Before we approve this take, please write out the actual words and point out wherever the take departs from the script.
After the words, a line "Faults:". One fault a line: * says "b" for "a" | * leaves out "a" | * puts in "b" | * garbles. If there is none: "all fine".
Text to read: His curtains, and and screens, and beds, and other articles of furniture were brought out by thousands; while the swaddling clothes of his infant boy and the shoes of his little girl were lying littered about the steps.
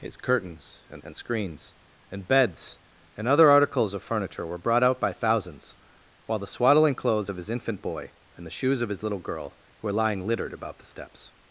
His curtains, and and screens, and beds, and other articles of furniture were brought out by thousands; while the swaddling clothes of his infant boy and the shoes of his little girl were lying littered about the steps.
Faults:
all fine